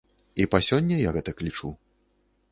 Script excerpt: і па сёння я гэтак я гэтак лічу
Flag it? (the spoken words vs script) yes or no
yes